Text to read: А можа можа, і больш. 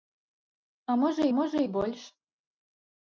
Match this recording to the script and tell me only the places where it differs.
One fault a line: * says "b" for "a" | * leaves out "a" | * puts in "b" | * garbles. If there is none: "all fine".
all fine